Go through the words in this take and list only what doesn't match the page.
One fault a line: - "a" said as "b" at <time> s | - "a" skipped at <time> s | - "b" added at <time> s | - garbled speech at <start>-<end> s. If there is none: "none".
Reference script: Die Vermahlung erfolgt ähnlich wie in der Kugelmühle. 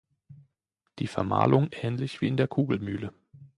- "erfolgt" skipped at 1.7 s